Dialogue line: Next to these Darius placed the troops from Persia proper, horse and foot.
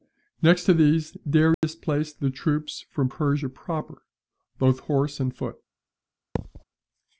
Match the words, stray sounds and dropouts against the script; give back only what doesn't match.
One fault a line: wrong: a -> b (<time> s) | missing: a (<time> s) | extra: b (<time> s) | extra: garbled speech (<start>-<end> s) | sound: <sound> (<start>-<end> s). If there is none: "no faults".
sound: dropout (1.5-1.6 s)
extra: both (4.6 s)
sound: thud (6.4-6.6 s)